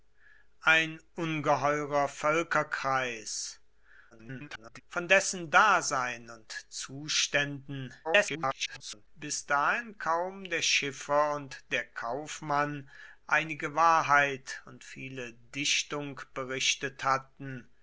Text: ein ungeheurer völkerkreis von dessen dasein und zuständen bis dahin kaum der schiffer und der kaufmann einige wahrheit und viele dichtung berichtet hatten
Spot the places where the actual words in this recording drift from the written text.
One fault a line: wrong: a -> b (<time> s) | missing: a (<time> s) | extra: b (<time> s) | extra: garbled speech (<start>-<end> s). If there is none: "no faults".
extra: garbled speech (4.1-4.8 s)
extra: garbled speech (8.0-9.1 s)